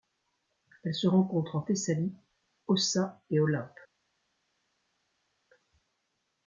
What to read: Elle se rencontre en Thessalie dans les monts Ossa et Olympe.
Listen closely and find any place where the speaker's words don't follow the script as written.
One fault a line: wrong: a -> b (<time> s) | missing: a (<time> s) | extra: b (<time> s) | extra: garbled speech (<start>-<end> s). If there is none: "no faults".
missing: dans les monts (2.1 s)